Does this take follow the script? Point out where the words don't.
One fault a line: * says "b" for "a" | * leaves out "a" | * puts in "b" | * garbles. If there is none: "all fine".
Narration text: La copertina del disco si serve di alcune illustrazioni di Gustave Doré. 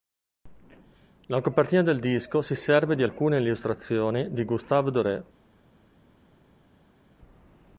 all fine